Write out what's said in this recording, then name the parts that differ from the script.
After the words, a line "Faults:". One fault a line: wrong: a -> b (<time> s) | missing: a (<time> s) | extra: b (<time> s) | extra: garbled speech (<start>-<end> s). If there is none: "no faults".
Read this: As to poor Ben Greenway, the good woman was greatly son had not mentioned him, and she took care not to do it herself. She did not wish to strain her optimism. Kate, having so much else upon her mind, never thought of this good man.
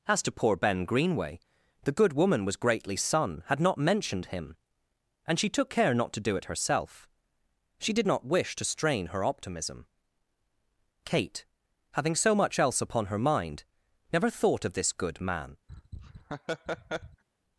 As to poor Ben Greenway, the good woman was greatly son had not mentioned him, and she took care not to do it herself. She did not wish to strain her optimism. Kate, having so much else upon her mind, never thought of this good man.
Faults:
no faults